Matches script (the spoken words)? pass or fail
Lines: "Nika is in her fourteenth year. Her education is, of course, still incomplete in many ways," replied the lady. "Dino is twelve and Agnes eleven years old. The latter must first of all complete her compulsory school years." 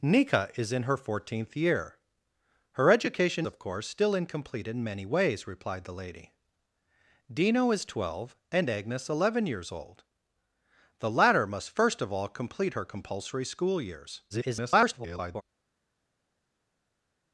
fail